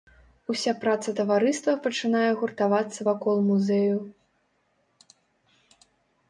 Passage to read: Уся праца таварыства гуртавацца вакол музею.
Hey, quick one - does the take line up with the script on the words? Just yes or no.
no